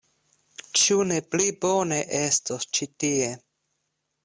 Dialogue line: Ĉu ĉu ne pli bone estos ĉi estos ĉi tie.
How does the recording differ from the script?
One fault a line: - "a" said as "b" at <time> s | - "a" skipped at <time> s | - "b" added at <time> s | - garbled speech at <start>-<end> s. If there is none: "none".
- "ĉu" skipped at 1.0 s
- "estos ĉi" skipped at 2.9 s